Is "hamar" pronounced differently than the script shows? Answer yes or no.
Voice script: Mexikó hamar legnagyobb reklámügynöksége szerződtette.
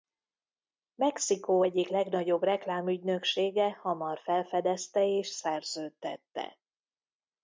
yes